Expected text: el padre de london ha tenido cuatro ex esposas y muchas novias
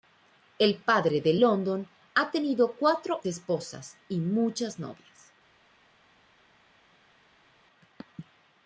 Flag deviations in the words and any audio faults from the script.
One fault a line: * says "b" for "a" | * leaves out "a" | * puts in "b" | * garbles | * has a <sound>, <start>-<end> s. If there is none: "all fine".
* leaves out "ex"